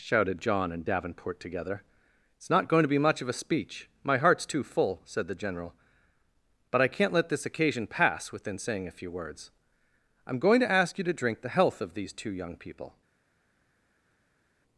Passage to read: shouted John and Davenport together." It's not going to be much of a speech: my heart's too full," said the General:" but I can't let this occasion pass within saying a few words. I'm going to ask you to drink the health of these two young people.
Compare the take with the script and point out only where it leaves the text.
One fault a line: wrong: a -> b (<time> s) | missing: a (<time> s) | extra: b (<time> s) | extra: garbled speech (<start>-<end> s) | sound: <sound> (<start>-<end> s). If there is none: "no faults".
no faults